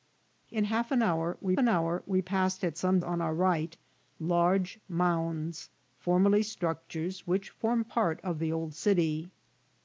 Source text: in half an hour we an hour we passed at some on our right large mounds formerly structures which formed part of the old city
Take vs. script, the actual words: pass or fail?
pass